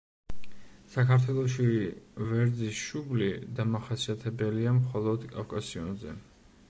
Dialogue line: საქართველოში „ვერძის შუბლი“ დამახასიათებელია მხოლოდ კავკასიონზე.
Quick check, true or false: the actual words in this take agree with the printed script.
true